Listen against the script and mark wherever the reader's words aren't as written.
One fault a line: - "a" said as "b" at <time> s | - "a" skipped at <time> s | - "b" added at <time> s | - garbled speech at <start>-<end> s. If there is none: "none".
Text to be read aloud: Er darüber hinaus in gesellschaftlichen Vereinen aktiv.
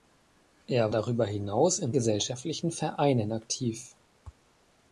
none